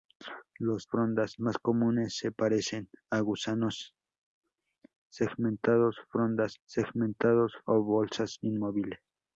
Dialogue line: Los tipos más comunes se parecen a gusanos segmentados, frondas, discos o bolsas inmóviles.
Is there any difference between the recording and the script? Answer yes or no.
yes